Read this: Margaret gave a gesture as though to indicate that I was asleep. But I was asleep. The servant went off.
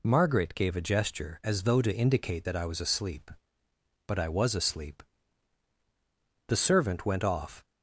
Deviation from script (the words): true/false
false